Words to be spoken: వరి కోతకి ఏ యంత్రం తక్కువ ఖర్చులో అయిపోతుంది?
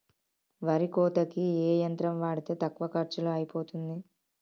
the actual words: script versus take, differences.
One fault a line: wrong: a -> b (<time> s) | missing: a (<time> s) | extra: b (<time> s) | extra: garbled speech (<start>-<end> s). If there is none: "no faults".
extra: వాడితే (2.2 s)